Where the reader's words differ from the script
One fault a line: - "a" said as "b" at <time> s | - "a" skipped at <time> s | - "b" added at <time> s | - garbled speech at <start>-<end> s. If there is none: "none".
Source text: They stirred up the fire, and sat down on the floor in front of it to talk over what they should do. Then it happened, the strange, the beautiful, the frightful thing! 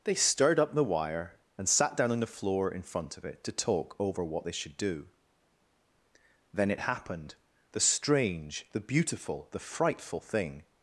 - "fire" said as "wire" at 0.8 s